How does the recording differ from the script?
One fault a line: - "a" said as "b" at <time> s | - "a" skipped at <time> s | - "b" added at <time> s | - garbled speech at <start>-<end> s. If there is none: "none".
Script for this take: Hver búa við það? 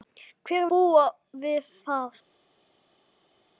none